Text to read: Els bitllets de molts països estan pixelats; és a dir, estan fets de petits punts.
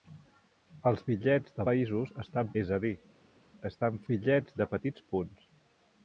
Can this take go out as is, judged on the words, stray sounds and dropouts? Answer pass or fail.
fail